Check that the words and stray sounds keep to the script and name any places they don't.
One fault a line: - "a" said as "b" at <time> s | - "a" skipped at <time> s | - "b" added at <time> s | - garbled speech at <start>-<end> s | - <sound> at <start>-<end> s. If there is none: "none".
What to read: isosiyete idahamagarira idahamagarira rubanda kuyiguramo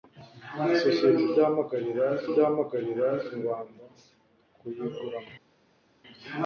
none